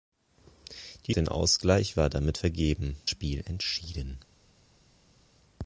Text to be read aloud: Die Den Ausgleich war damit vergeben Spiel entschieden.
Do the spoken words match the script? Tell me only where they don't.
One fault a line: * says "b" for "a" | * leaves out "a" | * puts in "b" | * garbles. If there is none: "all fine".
all fine